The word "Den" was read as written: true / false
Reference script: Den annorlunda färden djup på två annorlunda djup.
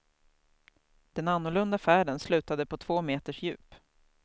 true